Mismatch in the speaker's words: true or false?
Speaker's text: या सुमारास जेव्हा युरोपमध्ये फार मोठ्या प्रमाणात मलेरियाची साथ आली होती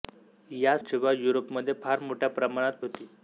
true